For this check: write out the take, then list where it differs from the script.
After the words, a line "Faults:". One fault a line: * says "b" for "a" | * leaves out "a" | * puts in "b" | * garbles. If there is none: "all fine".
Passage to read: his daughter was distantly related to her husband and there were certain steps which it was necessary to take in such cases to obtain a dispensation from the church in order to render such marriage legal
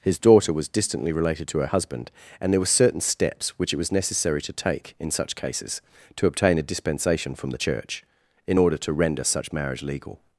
his daughter was distantly related to her husband and there were certain steps which it was necessary to take in such cases to obtain a dispensation from the church in order to render such marriage legal
Faults:
all fine